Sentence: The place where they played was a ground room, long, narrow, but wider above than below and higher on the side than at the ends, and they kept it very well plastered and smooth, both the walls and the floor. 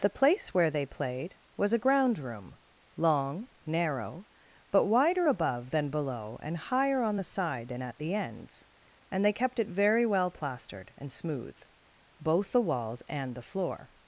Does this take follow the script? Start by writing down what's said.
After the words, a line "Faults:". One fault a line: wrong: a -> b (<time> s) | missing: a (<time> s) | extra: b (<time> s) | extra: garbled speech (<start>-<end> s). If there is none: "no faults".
The place where they played was a ground room, long, narrow, but wider above than below and higher on the side than at the ends, and they kept it very well plastered and smooth, both the walls and the floor.
Faults:
no faults